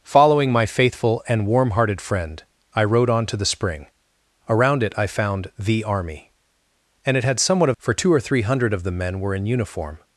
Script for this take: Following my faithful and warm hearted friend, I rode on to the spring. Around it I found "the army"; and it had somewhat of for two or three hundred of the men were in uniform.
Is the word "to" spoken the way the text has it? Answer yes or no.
yes